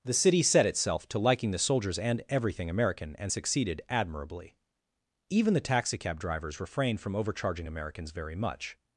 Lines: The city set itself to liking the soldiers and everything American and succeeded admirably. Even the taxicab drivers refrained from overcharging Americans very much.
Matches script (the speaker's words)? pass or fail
pass